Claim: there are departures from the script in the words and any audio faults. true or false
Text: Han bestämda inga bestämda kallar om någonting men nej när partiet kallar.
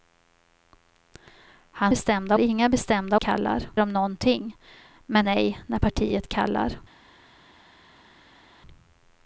false